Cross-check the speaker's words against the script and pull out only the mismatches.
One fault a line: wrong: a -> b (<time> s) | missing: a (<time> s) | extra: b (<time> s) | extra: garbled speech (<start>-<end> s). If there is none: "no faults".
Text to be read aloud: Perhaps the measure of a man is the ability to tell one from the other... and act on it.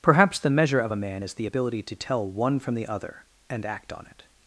no faults